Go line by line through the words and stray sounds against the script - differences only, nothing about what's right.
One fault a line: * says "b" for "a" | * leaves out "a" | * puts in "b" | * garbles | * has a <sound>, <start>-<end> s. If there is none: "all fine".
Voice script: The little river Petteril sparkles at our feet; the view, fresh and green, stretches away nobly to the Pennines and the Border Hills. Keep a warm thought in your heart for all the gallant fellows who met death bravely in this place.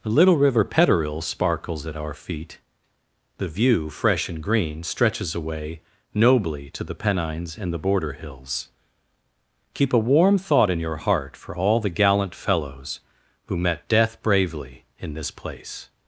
all fine